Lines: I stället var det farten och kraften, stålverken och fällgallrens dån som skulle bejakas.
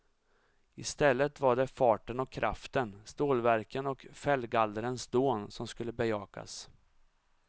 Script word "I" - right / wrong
right